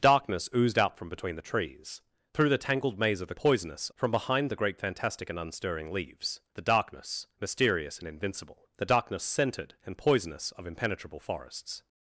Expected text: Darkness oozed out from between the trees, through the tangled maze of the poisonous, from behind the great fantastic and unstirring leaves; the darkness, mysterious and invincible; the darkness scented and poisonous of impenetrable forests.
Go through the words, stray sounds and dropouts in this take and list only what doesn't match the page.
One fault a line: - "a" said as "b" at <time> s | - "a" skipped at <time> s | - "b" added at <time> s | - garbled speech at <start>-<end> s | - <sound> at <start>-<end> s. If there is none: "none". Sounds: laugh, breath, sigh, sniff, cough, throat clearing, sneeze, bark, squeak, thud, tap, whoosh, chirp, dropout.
none